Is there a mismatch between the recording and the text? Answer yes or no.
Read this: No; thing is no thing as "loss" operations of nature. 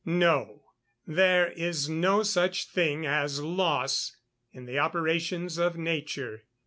yes